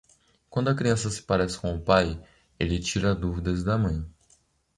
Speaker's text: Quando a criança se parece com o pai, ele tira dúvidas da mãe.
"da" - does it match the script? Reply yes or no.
yes